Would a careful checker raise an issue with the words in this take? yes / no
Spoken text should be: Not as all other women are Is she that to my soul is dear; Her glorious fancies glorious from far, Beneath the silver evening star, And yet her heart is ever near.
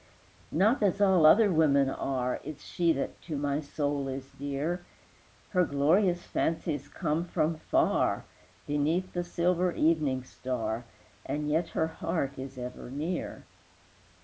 yes